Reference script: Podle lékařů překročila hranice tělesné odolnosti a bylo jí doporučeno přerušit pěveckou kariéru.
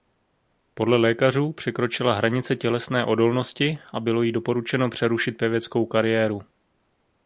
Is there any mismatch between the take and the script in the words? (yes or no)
no